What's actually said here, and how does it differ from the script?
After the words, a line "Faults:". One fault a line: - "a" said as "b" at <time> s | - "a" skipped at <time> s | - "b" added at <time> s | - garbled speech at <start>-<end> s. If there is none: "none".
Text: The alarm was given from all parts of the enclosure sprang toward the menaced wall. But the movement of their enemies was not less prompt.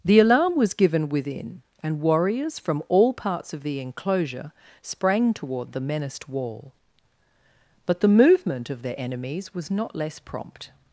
The alarm was given within, and warriors from all parts of the enclosure sprang toward the menaced wall. But the movement of their enemies was not less prompt.
Faults:
- "within and warriors" added at 1.1 s